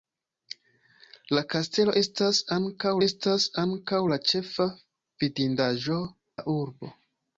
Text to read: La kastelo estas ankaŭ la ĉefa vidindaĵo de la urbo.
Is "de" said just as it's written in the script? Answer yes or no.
no